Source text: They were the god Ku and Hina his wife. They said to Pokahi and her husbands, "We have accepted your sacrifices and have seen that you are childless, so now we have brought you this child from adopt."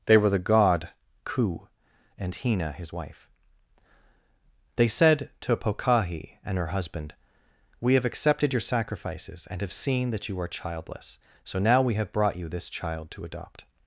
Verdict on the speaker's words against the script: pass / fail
fail